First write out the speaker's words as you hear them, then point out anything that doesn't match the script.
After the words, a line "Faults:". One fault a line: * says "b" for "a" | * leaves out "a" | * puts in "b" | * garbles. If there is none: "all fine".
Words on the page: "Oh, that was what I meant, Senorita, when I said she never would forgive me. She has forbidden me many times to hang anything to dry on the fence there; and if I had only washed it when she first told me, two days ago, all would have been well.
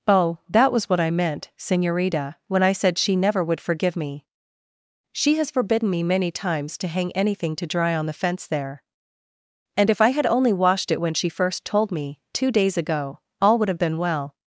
"Oh, that was what I meant, Senorita, when I said she never would forgive me. She has forbidden me many times to hang anything to dry on the fence there; and if I had only washed it when she first told me, two days ago, all would have been well.
Faults:
all fine